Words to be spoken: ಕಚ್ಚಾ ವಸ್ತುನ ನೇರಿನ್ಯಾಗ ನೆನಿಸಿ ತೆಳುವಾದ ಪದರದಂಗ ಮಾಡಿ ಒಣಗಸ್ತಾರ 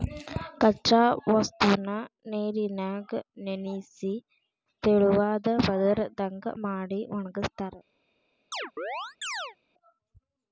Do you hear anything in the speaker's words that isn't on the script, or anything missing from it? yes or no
no